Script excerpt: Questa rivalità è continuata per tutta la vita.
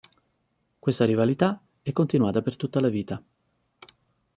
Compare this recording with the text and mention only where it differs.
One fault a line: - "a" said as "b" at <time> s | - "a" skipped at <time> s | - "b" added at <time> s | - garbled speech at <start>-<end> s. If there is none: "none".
none